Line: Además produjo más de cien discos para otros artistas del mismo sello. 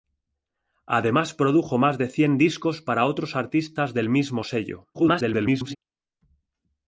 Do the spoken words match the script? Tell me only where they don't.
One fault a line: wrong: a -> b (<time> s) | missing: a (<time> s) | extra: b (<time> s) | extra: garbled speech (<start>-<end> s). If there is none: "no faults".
extra: garbled speech (4.9-5.8 s)